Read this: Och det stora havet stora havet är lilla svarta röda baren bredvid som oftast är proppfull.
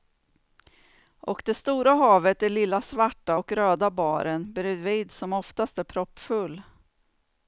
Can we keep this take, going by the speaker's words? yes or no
no